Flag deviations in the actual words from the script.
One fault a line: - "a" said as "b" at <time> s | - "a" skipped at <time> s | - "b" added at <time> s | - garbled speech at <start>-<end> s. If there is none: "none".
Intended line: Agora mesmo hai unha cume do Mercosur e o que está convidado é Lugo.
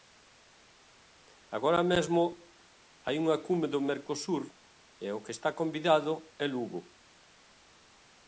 none